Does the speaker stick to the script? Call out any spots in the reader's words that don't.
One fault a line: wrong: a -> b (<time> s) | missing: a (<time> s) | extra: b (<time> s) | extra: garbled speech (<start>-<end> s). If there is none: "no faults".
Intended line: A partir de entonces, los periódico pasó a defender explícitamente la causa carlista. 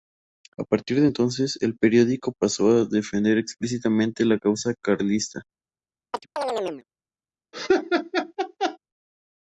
wrong: los -> el (1.6 s)